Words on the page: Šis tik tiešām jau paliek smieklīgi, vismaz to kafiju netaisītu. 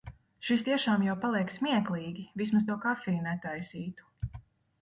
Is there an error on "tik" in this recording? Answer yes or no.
yes